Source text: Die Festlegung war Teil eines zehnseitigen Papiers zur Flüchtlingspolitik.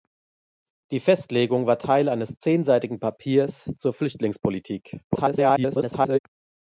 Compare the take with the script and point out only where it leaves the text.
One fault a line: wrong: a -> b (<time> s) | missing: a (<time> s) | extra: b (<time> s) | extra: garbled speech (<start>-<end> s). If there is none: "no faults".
extra: garbled speech (5.1-6.2 s)